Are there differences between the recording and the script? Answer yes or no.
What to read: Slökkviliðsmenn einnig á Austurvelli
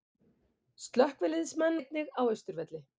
no